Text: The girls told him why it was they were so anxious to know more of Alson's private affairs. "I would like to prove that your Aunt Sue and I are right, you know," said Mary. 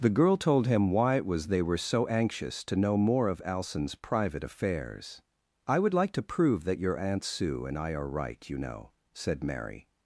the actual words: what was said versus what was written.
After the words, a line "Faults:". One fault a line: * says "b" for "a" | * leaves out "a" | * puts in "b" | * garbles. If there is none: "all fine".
The girl told him why it was they were so anxious to know more of Alson's private affairs. "I would like to prove that your Aunt Sue and I are right, you know," said Mary.
Faults:
* says "girl" for "girls"